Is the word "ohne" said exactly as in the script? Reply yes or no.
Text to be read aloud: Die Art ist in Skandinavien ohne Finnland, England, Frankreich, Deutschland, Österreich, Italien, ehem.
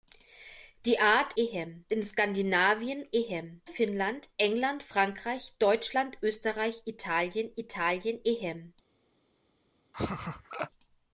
no